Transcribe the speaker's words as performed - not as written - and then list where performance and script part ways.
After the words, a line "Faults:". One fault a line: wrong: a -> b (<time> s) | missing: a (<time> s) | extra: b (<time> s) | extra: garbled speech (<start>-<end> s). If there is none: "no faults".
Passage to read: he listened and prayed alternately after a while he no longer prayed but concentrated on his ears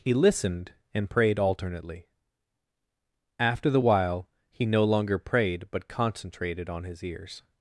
he listened and prayed alternately after the while he no longer prayed but concentrated on his ears
Faults:
wrong: a -> the (3.7 s)